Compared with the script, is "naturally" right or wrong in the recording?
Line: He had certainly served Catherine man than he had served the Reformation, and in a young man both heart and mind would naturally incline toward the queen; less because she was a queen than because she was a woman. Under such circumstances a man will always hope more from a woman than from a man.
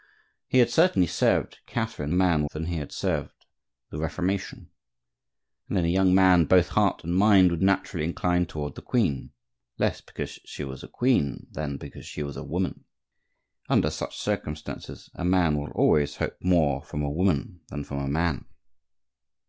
right